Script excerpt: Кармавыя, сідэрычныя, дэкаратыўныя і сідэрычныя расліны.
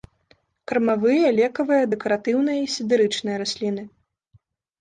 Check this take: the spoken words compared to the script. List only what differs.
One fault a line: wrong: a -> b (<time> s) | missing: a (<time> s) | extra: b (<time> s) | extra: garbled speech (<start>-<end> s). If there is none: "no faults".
wrong: сідэрычныя -> лекавыя (1.4 s)